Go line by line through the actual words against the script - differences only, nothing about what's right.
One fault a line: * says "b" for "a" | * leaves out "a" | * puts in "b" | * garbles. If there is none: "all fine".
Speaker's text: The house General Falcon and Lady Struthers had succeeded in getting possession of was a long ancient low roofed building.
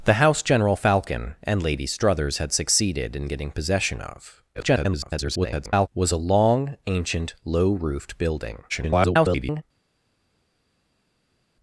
* garbles
* garbles